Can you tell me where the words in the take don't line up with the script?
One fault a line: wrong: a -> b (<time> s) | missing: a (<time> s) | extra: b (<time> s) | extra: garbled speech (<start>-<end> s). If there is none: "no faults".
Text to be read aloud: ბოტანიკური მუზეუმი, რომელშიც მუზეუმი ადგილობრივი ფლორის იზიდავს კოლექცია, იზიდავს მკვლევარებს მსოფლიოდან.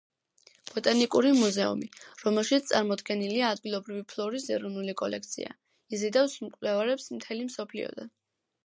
wrong: მუზეუმი -> წარმოდგენილია (2.7 s)
wrong: იზიდავს -> ეროვნული (4.6 s)
extra: მთელი (7.2 s)